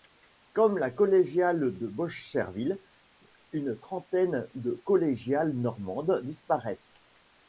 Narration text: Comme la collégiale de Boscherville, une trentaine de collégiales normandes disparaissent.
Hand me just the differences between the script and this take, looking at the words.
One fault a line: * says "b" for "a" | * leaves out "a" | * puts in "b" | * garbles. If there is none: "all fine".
all fine